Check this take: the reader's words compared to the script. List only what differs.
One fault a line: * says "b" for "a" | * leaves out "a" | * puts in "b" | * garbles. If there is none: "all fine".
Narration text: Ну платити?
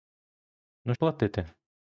all fine